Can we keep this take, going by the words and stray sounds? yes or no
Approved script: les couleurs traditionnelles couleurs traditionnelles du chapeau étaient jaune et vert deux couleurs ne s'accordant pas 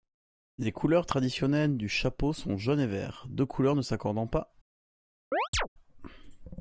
no